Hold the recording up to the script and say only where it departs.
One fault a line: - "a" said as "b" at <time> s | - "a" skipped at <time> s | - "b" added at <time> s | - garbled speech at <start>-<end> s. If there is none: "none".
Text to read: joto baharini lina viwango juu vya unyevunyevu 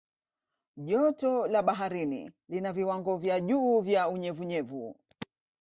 - "la" added at 1.5 s
- "vya" added at 3.2 s